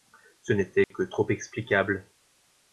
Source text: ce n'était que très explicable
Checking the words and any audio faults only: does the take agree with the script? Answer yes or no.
no